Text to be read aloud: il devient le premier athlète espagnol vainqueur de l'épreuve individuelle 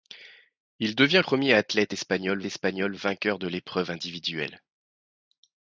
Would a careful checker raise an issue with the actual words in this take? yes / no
yes